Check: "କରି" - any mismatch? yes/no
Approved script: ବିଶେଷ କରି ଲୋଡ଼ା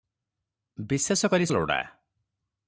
no